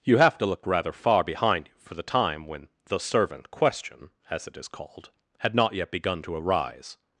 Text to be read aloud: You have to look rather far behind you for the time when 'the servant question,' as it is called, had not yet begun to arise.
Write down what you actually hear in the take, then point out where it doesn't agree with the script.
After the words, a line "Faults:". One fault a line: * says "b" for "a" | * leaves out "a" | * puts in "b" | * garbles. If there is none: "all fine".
You have to look rather far behind you for the time when 'the servant question,' as it is called, had not yet begun to arise.
Faults:
all fine